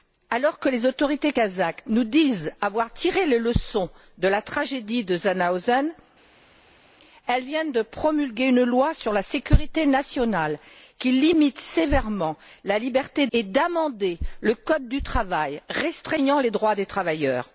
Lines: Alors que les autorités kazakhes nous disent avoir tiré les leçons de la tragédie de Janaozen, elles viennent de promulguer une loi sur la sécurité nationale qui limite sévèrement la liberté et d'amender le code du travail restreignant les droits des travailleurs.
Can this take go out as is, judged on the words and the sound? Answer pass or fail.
pass